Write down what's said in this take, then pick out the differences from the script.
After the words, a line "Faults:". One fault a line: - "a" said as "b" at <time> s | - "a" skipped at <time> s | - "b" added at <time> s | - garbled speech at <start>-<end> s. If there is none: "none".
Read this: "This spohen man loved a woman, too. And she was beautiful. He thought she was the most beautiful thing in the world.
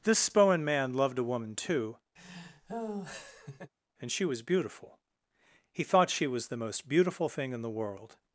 "This spohen man loved a woman, too. And she was beautiful. He thought she was the most beautiful thing in the world.
Faults:
none